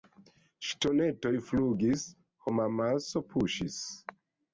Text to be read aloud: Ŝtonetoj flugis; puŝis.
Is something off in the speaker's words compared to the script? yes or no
yes